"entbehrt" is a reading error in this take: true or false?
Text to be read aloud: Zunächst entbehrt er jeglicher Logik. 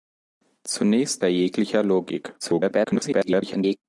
true